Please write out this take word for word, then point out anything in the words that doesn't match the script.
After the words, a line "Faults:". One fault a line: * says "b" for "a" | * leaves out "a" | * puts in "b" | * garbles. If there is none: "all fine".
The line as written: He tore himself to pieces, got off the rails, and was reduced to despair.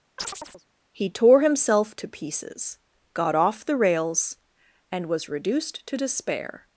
He tore himself to pieces, got off the rails, and was reduced to despair.
Faults:
all fine